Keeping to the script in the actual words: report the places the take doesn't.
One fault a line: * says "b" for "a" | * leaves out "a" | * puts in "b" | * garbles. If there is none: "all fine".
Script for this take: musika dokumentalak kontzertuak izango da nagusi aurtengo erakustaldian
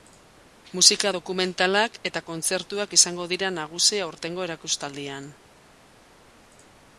* puts in "eta"
* says "dira" for "da"